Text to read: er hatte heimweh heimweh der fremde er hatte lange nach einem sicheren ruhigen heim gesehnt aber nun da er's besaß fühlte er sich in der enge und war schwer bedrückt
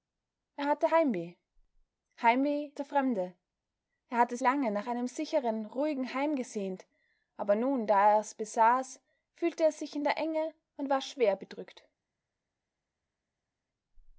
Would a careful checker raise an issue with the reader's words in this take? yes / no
no